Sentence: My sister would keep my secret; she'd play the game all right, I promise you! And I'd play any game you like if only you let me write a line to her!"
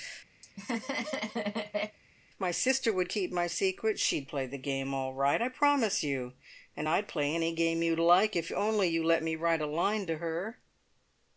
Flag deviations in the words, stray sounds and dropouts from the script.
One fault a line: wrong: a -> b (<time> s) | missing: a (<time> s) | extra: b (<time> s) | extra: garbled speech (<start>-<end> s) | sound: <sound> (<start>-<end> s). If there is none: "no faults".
sound: laugh (0.4-2.0 s)